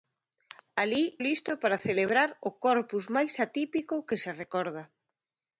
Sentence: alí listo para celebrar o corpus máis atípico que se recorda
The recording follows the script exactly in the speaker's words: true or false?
true